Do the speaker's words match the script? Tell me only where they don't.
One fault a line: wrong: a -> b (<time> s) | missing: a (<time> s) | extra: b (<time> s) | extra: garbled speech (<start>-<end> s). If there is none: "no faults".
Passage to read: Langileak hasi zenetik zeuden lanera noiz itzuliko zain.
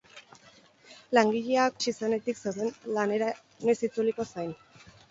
no faults